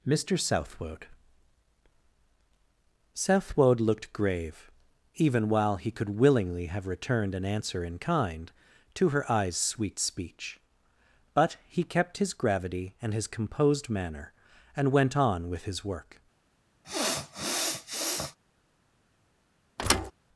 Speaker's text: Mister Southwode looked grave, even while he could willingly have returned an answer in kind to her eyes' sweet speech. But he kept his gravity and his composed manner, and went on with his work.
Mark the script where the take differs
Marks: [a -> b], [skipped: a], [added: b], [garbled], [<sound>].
Mister Southwode [added: Southwode] looked grave, even while he could willingly have returned an answer in kind to her eyes' sweet speech. But he kept his gravity and his composed manner, and went on with his work. [sniff] [thud]